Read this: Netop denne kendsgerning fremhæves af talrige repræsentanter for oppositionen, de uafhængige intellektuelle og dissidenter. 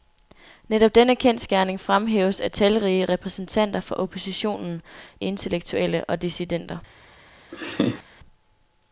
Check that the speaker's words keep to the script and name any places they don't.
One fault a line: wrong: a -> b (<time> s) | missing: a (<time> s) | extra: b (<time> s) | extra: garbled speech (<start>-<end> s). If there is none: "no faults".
missing: de uafhængige (4.8 s)